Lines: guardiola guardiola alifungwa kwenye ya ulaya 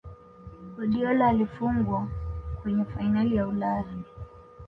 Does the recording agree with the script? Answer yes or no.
no